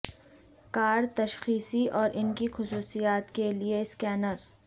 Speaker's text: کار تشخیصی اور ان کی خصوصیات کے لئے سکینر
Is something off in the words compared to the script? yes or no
no